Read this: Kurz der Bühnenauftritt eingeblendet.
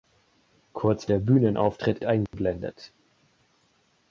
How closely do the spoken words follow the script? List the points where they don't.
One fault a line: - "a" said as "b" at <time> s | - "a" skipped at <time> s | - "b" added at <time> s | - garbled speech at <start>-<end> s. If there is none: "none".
none